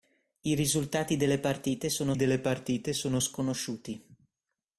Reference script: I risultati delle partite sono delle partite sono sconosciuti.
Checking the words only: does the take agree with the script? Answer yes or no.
yes